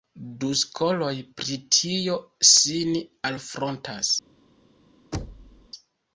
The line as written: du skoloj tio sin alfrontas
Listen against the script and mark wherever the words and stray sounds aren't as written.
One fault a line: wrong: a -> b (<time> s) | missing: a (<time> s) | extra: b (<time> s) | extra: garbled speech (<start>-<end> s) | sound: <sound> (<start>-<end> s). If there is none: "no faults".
extra: pri (1.4 s)
sound: thud (5.1-5.7 s)